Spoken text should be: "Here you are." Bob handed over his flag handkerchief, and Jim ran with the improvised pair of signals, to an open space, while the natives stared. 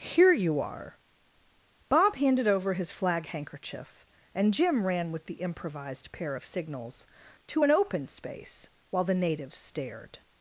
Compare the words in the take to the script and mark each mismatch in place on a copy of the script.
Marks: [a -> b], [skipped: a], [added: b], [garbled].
"Here you are." Bob handed over his flag handkerchief, and Jim ran with the improvised pair of signals, to an open space, while the natives stared.